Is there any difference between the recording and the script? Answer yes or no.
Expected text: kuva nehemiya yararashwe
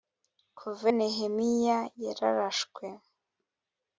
no